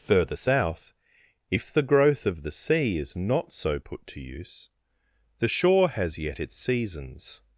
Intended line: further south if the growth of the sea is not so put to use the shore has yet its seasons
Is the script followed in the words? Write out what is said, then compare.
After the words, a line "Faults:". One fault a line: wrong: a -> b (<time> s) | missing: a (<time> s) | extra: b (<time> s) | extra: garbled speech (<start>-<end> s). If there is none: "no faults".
further south if the growth of the sea is not so put to use the shore has yet its seasons
Faults:
no faults